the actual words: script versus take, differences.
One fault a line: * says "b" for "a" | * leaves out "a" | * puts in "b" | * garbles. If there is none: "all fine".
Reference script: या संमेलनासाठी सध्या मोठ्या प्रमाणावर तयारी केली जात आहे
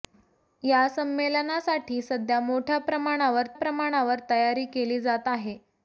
* puts in "प्रमाणावर"